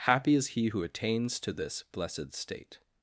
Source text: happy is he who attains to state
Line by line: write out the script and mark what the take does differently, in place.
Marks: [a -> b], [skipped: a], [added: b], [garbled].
happy is he who attains to [added: this blessed] state